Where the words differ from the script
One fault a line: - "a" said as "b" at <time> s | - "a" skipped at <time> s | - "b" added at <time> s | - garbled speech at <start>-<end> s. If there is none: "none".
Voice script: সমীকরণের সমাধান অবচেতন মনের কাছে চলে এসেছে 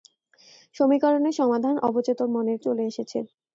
- "কাছে" skipped at 2.6 s